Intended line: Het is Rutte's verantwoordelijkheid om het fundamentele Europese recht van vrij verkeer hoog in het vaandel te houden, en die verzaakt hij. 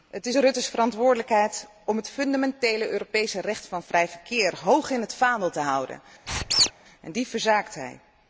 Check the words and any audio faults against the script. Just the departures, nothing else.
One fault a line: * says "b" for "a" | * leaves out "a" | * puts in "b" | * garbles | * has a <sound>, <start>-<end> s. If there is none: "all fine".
* has a squeak, 6.3-6.7 s